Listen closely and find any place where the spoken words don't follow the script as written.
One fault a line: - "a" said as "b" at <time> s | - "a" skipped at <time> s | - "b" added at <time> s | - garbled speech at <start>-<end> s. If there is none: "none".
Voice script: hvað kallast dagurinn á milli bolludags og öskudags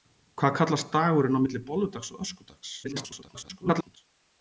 - garbled speech at 2.8-4.0 s